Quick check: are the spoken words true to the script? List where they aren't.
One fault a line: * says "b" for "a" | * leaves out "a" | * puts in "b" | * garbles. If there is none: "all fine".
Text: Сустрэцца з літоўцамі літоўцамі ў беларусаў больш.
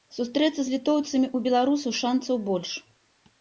* leaves out "літоўцамі"
* puts in "шанцаў"